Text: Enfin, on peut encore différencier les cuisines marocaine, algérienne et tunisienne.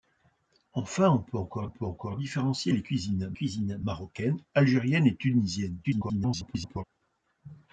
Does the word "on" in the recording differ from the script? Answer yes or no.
no